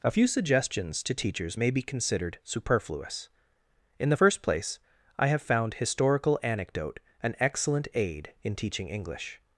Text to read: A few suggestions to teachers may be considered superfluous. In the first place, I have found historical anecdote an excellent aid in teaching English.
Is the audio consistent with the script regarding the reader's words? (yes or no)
yes